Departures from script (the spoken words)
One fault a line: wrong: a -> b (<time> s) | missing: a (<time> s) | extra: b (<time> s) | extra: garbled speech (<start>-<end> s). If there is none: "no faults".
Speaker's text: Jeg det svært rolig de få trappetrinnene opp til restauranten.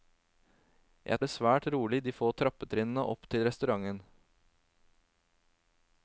no faults